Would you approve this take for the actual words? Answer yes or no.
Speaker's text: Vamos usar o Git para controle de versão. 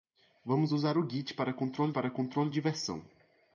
no